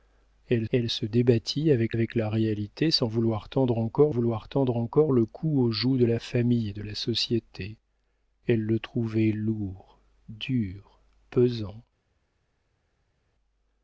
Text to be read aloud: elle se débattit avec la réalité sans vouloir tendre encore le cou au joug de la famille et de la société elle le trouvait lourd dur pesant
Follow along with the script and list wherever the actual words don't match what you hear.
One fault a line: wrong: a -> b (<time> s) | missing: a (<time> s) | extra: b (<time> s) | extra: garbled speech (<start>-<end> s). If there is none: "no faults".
extra: elle (0.7 s)
extra: avec (1.9 s)
extra: vouloir tendre encore (4.1 s)